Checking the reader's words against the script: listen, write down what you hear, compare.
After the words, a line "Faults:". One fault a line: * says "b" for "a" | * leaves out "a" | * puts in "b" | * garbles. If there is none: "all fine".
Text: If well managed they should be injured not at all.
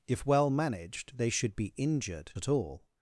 If well managed they should be injured at all.
Faults:
* leaves out "not"